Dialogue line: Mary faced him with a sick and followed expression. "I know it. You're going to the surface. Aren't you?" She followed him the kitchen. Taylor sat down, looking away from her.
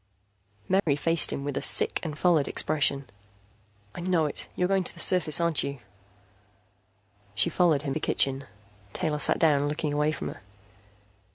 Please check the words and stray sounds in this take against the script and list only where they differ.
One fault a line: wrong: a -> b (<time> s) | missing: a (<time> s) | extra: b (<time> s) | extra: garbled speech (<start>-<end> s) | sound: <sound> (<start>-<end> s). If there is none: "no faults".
sound: dropout (0.8-0.9 s)